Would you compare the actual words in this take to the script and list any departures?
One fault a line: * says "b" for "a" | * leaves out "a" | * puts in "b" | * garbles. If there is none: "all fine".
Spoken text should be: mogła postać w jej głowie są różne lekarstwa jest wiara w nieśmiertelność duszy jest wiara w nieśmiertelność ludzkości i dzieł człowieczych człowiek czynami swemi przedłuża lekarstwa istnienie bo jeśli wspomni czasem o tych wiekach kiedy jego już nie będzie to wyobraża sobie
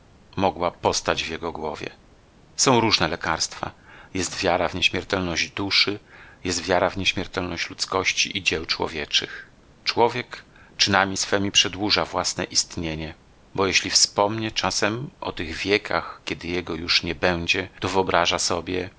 * says "jego" for "jej"
* says "własne" for "lekarstwa"